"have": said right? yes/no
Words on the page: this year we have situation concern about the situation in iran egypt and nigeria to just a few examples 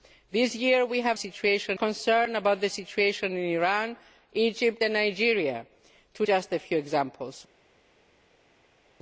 yes